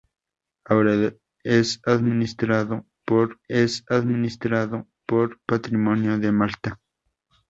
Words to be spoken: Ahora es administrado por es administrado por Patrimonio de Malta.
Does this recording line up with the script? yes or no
yes